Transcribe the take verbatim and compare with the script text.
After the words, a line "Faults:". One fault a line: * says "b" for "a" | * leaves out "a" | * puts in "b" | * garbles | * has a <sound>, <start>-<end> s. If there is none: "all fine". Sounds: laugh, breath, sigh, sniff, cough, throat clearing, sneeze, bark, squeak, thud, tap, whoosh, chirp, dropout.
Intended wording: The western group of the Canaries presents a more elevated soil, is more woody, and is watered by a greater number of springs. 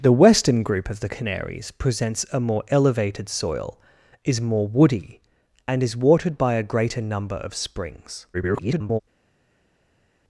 The western group of the Canaries presents a more elevated soil, is more woody, and is watered by a greater number of springs. [garbled]
Faults:
* garbles